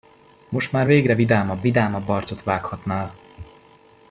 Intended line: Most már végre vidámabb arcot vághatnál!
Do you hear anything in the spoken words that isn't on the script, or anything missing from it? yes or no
yes